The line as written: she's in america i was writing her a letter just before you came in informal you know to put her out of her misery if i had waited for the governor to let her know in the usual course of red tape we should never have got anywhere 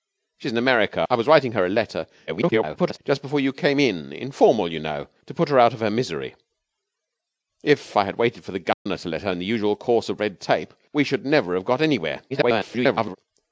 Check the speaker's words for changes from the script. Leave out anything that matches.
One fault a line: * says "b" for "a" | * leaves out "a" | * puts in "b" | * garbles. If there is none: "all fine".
* garbles
* leaves out "know"
* garbles